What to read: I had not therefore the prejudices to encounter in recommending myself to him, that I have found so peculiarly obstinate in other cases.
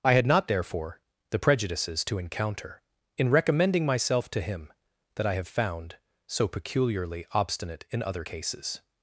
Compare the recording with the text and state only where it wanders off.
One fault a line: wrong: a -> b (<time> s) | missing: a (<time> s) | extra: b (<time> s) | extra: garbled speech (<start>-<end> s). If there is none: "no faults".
no faults